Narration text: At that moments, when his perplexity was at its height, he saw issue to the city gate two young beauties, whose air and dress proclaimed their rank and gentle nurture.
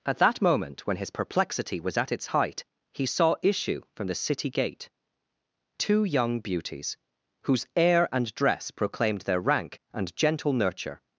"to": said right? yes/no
no